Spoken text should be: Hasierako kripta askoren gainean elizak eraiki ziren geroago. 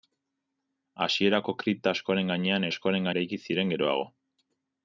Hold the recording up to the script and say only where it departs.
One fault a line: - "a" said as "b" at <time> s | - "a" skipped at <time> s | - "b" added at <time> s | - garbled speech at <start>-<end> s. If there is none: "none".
- "elizak" said as "askoren" at 2.7 s